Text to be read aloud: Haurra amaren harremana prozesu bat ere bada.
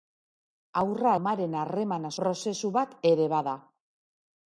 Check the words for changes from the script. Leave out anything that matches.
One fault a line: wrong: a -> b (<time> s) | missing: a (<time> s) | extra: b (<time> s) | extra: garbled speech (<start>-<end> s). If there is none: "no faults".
no faults